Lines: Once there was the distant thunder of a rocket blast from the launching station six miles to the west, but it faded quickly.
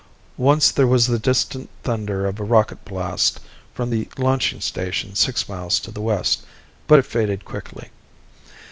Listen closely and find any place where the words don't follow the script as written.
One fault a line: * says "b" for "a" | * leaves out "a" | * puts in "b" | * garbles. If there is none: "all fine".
all fine